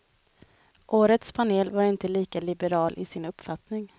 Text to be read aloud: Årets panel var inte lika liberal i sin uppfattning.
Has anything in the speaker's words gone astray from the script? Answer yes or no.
no